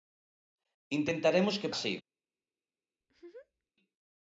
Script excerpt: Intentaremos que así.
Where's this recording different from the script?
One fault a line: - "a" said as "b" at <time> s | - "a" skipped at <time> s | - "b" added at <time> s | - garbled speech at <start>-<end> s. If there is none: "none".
none